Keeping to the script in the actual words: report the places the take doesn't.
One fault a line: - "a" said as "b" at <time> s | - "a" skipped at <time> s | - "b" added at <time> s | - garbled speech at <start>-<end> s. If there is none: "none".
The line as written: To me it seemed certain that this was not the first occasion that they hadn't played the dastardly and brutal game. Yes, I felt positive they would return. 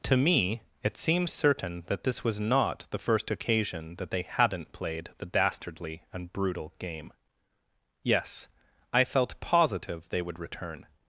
none